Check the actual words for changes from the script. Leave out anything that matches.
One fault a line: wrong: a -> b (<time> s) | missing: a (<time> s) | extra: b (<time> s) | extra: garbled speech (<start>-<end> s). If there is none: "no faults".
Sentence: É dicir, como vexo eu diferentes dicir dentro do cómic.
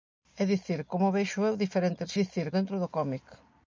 no faults